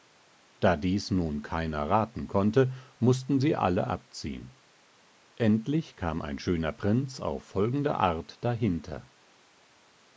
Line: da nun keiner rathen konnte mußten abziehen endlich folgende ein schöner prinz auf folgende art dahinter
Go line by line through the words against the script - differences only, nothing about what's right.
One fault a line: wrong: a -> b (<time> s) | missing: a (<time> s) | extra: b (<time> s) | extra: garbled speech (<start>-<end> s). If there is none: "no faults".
extra: dies (0.8 s)
extra: sie alle (3.4 s)
wrong: folgende -> kam (6.0 s)